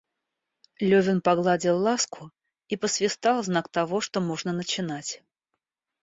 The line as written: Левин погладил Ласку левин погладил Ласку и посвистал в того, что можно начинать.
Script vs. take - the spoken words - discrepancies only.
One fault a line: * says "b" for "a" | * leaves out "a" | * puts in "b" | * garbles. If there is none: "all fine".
* leaves out "левин погладил Ласку"
* puts in "знак"